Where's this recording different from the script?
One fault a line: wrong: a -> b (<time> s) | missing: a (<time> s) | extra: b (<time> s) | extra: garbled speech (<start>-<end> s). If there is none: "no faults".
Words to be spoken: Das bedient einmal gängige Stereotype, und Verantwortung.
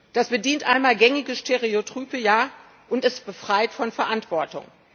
extra: es befreit von (3.0 s)